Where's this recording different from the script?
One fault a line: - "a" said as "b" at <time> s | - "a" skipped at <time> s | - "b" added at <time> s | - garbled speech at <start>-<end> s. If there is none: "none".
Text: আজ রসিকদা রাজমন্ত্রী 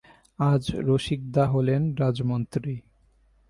- "হলেন" added at 1.5 s